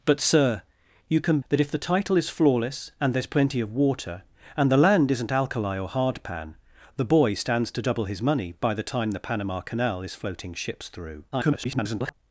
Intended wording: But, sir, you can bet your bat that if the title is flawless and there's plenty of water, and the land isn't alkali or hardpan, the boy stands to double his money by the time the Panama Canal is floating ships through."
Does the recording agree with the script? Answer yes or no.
no